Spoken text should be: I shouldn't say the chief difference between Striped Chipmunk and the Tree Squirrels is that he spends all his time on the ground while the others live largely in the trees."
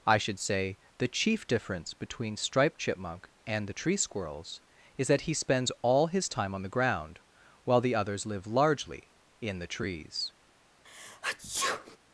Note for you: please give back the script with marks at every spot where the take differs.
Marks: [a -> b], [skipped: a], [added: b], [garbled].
I [shouldn't -> should] say the chief difference between Striped Chipmunk and the Tree Squirrels is that he spends all his time on the ground while the others live largely in the trees."